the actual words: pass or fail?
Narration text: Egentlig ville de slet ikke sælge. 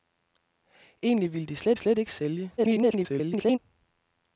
fail